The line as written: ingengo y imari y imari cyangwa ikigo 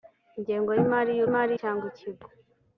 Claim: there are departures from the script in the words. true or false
false